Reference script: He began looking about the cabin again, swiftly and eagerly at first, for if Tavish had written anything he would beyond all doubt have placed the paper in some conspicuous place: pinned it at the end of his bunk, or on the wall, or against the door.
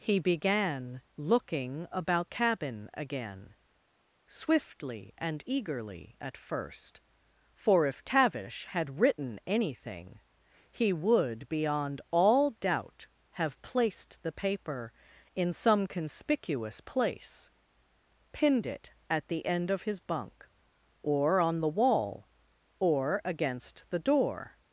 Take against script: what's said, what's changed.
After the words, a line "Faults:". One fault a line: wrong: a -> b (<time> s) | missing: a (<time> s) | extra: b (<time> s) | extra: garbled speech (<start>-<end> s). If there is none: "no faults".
He began looking about cabin again, swiftly and eagerly at first, for if Tavish had written anything he would beyond all doubt have placed the paper in some conspicuous place: pinned it at the end of his bunk, or on the wall, or against the door.
Faults:
missing: the (2.3 s)